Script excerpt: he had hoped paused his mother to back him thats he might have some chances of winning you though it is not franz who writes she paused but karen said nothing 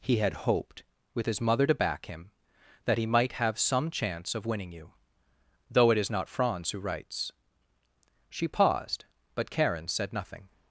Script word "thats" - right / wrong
wrong